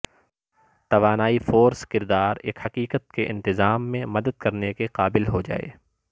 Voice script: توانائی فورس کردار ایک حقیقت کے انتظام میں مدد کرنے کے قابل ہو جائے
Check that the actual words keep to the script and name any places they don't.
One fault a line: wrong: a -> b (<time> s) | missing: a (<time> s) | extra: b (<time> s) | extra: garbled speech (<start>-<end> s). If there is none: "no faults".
no faults